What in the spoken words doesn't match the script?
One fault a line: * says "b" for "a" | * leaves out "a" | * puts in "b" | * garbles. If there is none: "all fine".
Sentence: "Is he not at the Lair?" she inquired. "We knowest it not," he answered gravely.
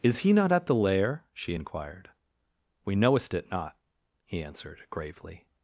all fine